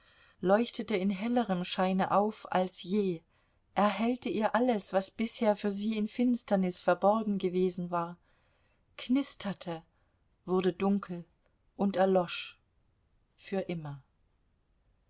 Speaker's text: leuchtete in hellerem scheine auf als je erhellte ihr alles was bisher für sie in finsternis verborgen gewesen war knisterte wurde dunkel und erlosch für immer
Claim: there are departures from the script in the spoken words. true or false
false